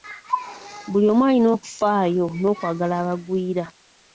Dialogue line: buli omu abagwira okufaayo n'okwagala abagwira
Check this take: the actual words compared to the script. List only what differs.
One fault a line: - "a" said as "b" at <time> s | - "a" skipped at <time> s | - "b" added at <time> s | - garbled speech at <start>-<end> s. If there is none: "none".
- "abagwira" said as "alina" at 1.3 s